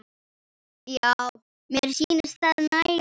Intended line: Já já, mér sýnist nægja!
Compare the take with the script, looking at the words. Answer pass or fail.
fail